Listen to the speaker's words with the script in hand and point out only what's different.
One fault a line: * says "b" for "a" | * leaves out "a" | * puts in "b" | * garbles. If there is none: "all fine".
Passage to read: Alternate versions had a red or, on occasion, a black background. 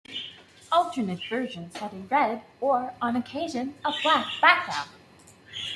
all fine